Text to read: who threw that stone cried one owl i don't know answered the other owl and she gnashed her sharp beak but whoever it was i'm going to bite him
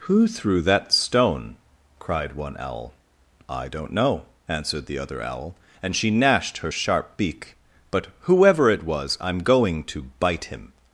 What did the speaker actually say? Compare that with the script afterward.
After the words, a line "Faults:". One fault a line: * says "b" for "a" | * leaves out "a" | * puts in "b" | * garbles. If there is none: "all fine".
who threw that stone cried one owl i don't know answered the other owl and she gnashed her sharp beak but whoever it was i'm going to bite him
Faults:
all fine